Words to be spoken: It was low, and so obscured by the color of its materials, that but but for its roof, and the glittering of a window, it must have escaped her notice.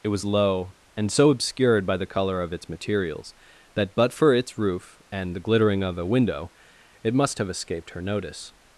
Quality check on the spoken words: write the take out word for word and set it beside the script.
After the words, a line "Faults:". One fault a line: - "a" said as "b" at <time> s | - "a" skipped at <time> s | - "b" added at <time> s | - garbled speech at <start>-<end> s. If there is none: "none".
It was low, and so obscured by the color of its materials, that but for its roof, and the glittering of a window, it must have escaped her notice.
Faults:
- "but" skipped at 4.1 s